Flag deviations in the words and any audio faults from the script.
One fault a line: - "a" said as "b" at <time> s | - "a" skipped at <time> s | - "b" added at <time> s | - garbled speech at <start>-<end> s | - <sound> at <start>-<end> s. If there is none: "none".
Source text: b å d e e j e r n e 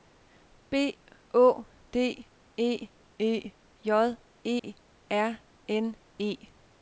- dropout at 4.6-4.6 s